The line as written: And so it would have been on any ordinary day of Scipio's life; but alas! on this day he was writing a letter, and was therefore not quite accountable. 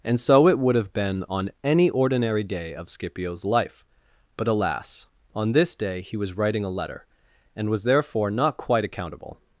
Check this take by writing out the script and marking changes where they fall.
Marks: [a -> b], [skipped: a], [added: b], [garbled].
And so it would have been on any ordinary day of Scipio's life; but alas! on this day he was writing a letter, and was therefore not quite accountable.